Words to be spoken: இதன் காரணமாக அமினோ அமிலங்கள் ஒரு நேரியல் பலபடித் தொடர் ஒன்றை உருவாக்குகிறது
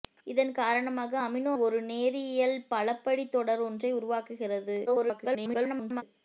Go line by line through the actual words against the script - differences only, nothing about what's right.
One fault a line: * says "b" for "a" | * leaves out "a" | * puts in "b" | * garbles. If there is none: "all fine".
* leaves out "அமிலங்கள்"
* garbles